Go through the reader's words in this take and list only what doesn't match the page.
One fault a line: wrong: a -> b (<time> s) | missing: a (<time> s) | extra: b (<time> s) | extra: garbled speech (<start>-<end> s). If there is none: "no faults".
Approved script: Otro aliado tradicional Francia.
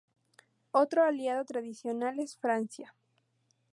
extra: es (2.2 s)